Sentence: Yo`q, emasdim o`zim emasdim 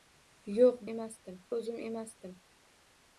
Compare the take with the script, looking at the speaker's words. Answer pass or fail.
pass